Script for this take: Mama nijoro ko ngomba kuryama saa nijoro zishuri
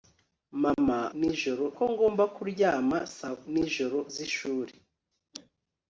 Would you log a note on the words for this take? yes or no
no